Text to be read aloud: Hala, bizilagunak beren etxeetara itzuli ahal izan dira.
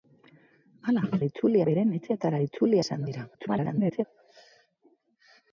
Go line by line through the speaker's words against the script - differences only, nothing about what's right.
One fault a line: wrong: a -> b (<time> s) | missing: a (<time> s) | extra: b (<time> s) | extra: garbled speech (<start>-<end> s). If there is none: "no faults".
wrong: bizilagunak -> itzuli (1.3 s)
missing: ahal (2.8 s)
extra: garbled speech (3.3-4.0 s)